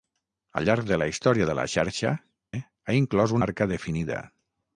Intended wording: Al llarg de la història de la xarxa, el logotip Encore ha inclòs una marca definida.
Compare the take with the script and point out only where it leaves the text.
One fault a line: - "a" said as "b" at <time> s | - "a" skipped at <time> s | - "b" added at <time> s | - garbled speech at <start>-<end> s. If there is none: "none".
- "el logotip Encore" skipped at 2.1 s
- "una" skipped at 3.4 s